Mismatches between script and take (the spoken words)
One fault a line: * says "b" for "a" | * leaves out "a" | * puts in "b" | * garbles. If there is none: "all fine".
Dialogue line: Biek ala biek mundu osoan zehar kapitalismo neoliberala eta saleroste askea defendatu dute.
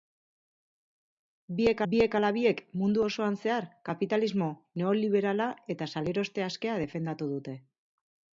* puts in "biek"